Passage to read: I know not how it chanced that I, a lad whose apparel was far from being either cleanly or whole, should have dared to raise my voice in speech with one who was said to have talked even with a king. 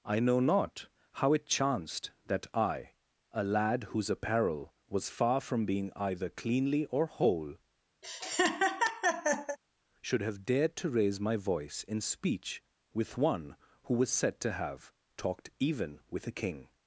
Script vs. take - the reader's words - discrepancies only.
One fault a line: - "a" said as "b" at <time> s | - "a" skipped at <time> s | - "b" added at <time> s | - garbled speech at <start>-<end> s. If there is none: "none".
none